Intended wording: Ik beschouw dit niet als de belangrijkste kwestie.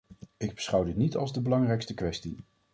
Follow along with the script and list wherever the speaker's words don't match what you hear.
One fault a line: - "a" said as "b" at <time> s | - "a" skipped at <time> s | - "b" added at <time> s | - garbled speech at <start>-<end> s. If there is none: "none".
none